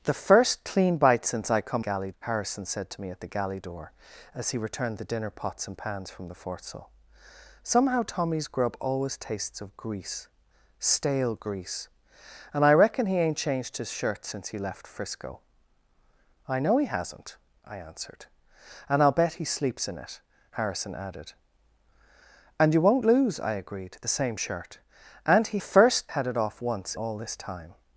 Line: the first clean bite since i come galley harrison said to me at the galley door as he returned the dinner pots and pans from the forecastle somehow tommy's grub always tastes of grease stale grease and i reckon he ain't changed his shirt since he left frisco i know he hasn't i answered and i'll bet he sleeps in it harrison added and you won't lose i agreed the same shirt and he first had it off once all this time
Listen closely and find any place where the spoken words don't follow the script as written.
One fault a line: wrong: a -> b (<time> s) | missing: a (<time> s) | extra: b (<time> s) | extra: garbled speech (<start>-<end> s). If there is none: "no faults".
no faults